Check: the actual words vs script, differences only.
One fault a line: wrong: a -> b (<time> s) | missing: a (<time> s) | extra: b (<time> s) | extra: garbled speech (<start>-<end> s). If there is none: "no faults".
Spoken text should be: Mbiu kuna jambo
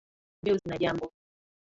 no faults